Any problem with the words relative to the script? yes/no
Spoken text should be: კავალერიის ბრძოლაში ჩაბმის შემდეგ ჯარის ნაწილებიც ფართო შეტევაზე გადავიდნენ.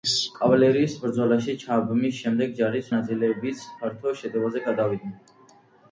no